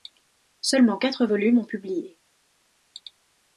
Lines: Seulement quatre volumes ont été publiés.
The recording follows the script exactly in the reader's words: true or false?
false